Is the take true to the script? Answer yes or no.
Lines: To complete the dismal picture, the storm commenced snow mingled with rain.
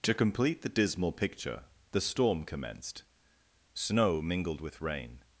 yes